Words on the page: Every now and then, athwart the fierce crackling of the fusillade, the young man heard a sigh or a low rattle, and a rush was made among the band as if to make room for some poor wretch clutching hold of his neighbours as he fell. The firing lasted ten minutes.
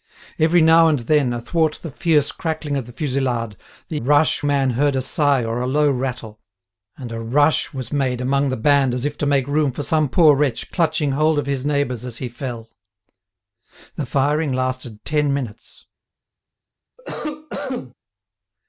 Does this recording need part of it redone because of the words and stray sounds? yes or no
yes